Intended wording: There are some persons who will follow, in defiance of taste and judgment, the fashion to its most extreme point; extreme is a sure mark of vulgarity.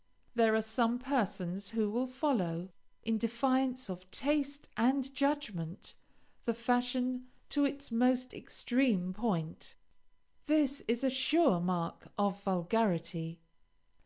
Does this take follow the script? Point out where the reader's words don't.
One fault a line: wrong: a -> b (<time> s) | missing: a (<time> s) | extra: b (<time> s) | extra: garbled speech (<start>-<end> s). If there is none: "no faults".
wrong: extreme -> this (10.5 s)